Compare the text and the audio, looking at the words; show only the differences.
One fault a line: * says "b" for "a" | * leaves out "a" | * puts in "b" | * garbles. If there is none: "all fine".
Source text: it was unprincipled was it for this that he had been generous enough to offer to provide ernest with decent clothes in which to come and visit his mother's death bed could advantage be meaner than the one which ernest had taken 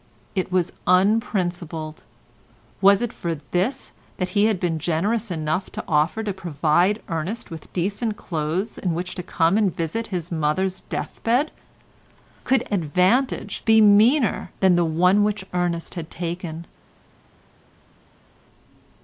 all fine